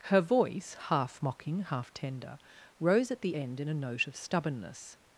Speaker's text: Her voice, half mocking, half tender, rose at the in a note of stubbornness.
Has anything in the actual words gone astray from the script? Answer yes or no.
yes